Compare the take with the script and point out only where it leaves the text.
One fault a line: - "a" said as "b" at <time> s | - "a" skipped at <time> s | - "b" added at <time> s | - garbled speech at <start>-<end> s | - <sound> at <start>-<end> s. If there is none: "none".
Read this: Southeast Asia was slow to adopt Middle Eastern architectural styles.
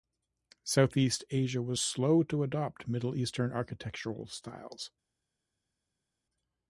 none